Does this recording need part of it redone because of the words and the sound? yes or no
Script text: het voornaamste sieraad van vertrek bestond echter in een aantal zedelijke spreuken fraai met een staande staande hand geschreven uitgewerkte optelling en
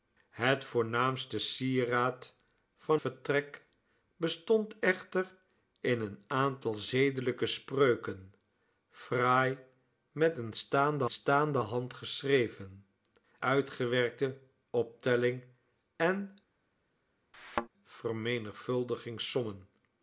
yes